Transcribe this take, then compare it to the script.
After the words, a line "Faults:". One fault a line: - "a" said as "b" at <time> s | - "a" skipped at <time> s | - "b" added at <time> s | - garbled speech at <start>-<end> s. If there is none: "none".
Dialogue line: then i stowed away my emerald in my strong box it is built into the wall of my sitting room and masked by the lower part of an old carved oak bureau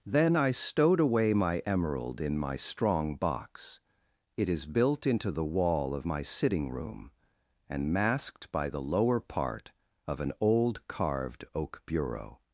then i stowed away my emerald in my strong box it is built into the wall of my sitting room and masked by the lower part of an old carved oak bureau
Faults:
none